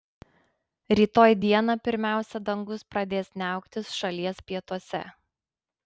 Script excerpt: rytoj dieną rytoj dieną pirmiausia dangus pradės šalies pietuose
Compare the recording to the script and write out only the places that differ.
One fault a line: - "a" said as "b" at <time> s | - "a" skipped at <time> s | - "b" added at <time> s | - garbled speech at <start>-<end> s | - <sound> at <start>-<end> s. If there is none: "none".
- "rytoj dieną" skipped at 1.8 s
- "niauktis" added at 3.4 s